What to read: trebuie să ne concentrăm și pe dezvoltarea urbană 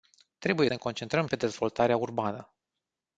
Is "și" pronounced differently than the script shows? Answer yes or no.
yes